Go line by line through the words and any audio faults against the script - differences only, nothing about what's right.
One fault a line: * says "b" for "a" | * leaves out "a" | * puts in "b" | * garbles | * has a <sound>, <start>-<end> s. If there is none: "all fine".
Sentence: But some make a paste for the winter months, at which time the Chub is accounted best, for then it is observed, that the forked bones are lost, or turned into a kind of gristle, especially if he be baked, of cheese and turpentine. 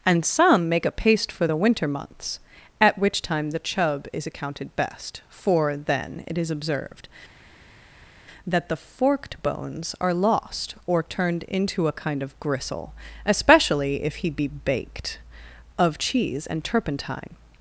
* says "And" for "But"